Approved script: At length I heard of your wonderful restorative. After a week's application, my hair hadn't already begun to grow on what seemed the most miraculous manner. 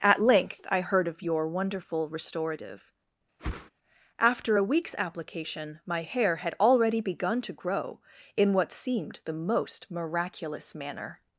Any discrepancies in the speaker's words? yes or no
yes